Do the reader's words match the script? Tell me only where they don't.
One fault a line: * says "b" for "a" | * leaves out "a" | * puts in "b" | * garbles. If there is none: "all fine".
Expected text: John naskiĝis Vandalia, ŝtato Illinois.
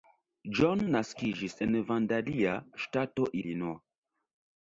* puts in "en"